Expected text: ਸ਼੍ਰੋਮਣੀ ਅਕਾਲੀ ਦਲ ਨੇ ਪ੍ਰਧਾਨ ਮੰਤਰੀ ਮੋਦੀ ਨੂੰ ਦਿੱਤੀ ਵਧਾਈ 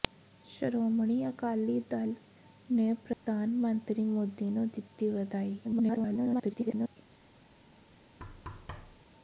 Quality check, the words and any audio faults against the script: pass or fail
fail